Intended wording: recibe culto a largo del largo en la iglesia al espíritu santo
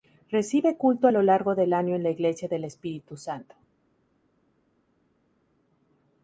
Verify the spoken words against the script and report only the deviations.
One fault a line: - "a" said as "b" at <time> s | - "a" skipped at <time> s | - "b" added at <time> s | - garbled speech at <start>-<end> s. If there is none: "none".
- "lo" added at 1.1 s
- "largo" said as "año" at 1.7 s
- "al" said as "del" at 2.5 s